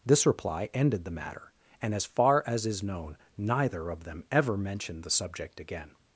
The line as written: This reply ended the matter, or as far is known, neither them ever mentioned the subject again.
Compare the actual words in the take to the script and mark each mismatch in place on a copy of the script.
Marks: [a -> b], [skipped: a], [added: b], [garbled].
This reply ended the matter, [or -> and] as far [added: as] is known, neither [added: of] them ever mentioned the subject again.